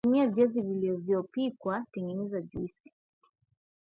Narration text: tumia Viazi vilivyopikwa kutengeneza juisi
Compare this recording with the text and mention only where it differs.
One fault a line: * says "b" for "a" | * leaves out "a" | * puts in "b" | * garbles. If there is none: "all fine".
all fine